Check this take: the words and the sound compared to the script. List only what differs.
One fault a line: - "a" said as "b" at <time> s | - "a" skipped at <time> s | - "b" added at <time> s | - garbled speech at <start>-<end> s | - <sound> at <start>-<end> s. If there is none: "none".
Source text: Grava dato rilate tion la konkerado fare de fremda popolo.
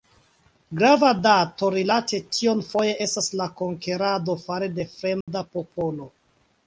- "foje estas" added at 2.7 s
- dropout at 5.2-5.3 s